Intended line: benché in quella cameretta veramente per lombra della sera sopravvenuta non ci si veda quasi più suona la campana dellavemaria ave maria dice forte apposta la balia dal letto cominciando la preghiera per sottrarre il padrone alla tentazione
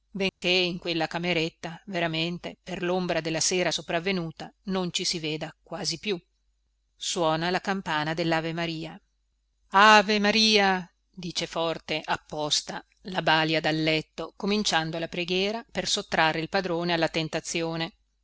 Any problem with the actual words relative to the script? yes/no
no